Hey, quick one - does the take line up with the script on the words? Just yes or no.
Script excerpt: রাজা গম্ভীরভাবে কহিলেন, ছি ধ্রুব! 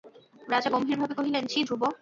yes